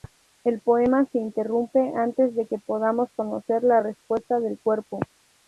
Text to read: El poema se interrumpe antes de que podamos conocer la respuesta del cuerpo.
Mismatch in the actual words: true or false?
false